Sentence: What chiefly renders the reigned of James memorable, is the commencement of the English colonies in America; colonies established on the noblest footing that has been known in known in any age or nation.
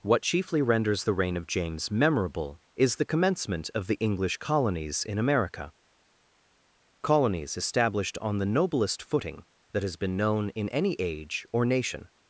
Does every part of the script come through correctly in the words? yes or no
no